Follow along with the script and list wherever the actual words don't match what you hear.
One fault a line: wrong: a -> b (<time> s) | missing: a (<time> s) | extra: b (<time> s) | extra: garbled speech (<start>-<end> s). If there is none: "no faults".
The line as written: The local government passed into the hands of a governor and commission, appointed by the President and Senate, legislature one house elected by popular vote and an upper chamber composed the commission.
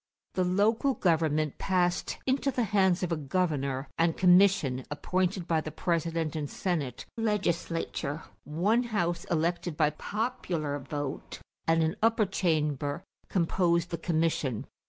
no faults